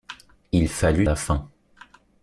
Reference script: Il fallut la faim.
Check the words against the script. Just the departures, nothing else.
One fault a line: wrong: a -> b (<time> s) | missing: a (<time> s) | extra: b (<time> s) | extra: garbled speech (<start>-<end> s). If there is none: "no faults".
no faults